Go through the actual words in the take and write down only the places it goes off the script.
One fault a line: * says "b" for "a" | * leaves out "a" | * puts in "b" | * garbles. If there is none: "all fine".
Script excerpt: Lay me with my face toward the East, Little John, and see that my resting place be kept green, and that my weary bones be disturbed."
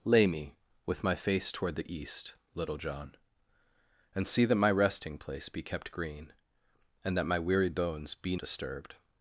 all fine